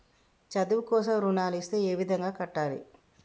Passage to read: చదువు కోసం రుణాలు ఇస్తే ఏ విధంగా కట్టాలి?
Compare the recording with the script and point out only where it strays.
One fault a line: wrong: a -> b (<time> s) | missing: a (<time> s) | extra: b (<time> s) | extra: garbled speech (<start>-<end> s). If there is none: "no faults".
no faults